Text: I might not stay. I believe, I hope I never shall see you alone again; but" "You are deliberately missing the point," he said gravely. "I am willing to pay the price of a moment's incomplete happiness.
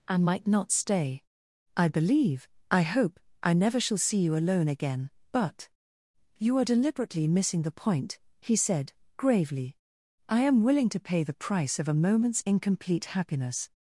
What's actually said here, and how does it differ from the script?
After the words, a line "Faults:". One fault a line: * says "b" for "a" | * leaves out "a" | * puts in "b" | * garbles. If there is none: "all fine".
I might not stay. I believe, I hope I never shall see you alone again; but" "You are deliberately missing the point," he said gravely. "I am willing to pay the price of a moment's incomplete happiness.
Faults:
all fine